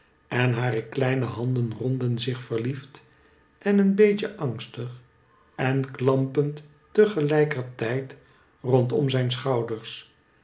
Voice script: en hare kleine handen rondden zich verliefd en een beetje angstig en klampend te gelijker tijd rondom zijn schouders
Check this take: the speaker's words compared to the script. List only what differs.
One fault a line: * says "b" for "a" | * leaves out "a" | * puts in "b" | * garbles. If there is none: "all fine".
all fine